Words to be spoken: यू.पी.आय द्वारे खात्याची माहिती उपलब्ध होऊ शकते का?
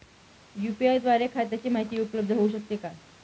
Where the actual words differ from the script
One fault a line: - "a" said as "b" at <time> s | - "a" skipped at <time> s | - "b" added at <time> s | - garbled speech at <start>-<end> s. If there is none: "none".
none